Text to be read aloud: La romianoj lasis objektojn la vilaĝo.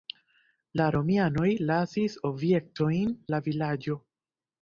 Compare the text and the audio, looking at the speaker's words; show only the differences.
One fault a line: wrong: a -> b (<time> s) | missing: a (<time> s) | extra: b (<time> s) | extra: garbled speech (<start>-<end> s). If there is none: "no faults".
no faults